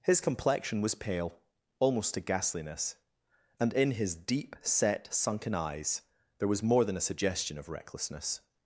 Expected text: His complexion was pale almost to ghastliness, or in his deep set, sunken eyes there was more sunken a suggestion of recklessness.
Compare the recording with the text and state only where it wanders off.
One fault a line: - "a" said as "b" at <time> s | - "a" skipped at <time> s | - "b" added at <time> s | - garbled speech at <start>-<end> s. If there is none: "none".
- "or" said as "and" at 3.6 s
- "sunken" said as "than" at 6.8 s